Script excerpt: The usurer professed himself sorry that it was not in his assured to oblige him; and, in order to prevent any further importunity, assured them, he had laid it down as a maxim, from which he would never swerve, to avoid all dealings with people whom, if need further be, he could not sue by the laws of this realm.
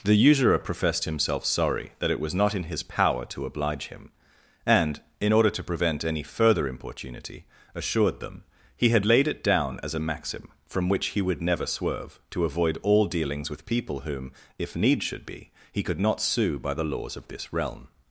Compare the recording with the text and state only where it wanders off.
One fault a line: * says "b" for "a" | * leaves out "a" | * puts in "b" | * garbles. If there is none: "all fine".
* says "power" for "assured"
* says "should" for "further"